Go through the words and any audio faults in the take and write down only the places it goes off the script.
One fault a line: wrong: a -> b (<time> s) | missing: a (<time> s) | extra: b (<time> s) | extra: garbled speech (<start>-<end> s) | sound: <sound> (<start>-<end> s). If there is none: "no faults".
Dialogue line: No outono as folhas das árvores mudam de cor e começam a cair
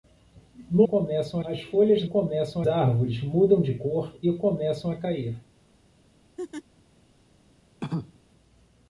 wrong: outono -> começam (0.8 s)
wrong: das -> começam (2.0 s)
sound: laugh (6.4-6.6 s)
sound: cough (7.8-8.2 s)